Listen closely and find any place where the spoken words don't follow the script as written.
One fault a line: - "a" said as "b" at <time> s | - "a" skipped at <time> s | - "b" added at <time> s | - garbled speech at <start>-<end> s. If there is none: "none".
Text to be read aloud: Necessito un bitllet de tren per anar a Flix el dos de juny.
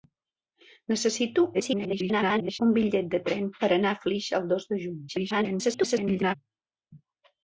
- garbled speech at 1.5-2.6 s
- garbled speech at 5.1-6.4 s